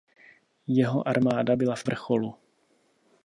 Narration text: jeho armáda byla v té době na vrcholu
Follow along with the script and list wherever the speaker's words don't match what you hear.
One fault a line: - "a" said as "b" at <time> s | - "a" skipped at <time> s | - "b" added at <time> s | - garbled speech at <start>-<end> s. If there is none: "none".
- "té době na" skipped at 1.8 s